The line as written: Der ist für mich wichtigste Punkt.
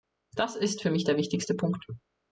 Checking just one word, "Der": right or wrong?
wrong